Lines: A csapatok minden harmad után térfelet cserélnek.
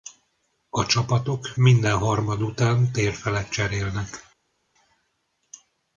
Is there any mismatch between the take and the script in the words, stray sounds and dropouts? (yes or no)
no